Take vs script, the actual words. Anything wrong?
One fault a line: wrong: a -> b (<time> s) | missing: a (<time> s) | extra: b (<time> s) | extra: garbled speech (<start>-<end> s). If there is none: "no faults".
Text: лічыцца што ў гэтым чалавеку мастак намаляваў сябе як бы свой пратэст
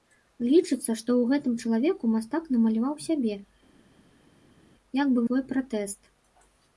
no faults